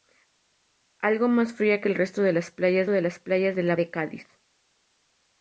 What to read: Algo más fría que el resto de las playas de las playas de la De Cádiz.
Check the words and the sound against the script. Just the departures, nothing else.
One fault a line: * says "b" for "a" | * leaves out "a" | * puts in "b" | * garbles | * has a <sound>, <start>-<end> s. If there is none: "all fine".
all fine